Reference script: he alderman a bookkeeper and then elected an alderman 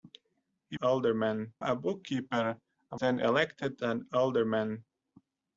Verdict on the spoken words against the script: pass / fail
pass